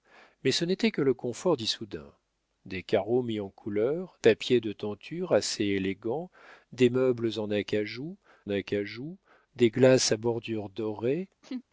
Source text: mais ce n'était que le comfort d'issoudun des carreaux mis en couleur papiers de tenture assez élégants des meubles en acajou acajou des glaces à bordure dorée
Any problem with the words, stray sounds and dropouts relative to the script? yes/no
yes